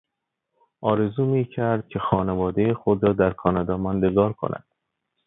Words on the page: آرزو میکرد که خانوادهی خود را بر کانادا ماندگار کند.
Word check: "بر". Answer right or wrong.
wrong